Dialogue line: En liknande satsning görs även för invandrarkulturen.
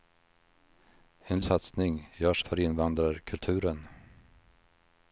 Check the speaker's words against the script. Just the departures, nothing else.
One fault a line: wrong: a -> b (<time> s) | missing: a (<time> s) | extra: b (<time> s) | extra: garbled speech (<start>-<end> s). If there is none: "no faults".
missing: liknande (1.4 s)
missing: även (2.4 s)